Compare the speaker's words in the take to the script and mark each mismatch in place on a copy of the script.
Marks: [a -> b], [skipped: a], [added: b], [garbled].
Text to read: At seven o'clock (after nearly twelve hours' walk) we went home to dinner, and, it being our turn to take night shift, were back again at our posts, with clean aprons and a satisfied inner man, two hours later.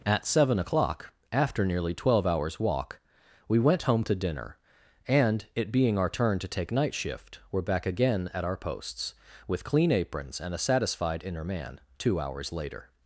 At seven o'clock (after nearly twelve hours' walk) we went home to dinner, and, it being our turn to take night shift, were back again at our posts, with clean aprons and a satisfied inner man, two hours later.